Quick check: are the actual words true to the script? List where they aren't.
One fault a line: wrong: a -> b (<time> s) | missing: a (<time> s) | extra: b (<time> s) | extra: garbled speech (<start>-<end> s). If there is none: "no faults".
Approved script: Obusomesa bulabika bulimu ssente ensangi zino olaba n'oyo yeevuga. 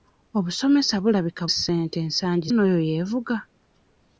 missing: bulimu (1.4 s)
missing: zino olaba (2.5 s)